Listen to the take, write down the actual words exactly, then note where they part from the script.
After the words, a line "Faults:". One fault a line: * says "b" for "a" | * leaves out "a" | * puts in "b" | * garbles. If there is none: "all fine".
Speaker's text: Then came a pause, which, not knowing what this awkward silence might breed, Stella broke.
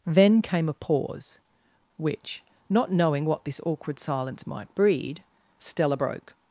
Then came a pause, which, not knowing what this awkward silence might breed, Stella broke.
Faults:
all fine